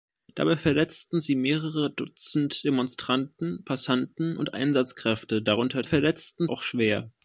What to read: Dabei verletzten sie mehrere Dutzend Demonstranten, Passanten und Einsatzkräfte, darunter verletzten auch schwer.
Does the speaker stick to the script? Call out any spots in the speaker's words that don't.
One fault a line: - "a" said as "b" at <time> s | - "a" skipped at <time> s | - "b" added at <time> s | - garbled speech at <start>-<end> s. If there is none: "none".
none